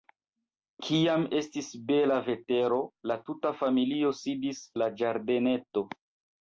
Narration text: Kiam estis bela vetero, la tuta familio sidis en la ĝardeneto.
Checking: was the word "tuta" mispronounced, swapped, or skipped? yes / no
no